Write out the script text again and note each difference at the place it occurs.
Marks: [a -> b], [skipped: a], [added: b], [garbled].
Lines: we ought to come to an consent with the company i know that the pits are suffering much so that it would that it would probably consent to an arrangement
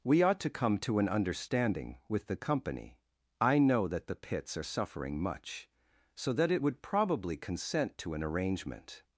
we ought to come to an [consent -> understanding] with the company i know that the pits are suffering much so that it would [skipped: that it would] probably consent to an arrangement